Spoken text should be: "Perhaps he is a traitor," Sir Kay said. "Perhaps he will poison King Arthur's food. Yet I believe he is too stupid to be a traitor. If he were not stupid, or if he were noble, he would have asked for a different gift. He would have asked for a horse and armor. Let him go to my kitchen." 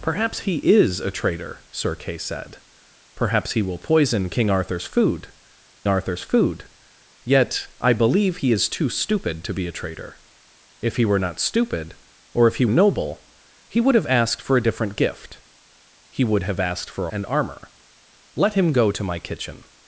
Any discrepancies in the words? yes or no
yes